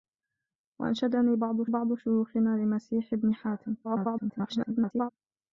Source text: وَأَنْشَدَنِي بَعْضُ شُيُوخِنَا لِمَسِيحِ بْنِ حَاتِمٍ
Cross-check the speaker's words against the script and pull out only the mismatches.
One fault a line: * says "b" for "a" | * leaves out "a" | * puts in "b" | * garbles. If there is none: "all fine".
* puts in "بَعْضُ"
* garbles